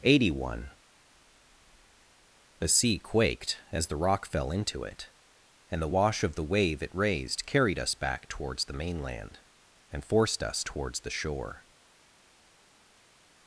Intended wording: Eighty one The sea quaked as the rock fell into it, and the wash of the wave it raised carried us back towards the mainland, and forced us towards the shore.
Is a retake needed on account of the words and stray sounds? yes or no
no